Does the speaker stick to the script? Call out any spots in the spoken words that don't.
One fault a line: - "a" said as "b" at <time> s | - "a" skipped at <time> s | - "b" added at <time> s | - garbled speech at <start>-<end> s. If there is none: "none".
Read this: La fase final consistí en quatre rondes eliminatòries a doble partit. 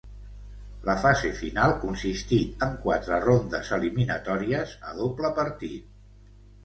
none